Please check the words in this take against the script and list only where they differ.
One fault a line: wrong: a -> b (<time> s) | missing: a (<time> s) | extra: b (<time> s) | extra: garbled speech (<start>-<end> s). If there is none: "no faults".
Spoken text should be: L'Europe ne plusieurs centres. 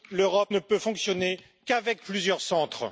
extra: peut fonctionner qu'avec (0.6 s)